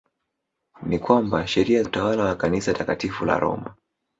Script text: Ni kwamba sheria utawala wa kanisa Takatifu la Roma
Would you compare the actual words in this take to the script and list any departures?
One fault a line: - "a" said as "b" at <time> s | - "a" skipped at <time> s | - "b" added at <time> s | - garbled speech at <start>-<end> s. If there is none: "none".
none